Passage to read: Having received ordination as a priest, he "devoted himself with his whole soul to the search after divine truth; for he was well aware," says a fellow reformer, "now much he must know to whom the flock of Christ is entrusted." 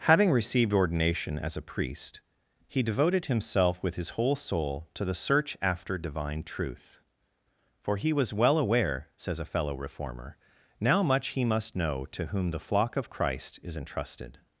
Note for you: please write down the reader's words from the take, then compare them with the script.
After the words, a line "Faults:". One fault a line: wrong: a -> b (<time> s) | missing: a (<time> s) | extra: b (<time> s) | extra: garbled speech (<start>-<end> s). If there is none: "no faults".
Having received ordination as a priest, he "devoted himself with his whole soul to the search after divine truth; for he was well aware," says a fellow reformer, "now much he must know to whom the flock of Christ is entrusted."
Faults:
no faults